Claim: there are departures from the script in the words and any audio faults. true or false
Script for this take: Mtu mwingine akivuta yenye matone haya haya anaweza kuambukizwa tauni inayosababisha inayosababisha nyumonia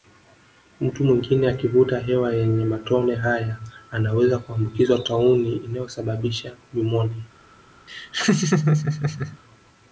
true